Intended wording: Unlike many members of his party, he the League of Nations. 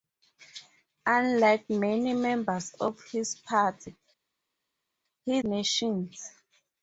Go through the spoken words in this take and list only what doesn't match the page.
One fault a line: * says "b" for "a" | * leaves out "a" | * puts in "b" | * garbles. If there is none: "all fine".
* leaves out "the League of"